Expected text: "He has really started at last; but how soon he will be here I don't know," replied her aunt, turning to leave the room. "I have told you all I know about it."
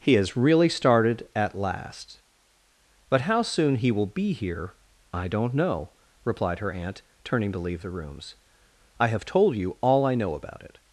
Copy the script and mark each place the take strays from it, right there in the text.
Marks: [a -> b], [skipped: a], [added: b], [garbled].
"He has really started at last; but how soon he will be here I don't know," replied her aunt, turning to leave the [room. -> rooms] "I have told you all I know about it."